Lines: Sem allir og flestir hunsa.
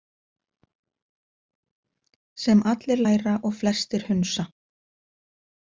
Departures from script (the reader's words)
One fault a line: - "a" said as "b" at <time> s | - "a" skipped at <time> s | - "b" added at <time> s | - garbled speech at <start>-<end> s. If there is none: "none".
- "læra" added at 3.0 s